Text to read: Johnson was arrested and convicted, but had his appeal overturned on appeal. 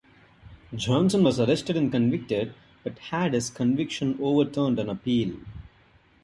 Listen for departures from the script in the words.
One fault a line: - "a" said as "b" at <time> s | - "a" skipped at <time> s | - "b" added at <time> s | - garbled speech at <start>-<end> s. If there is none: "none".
- "appeal" said as "conviction" at 3.5 s